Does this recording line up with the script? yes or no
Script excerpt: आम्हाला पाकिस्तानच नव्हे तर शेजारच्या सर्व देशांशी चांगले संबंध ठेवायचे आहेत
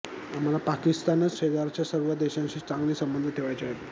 no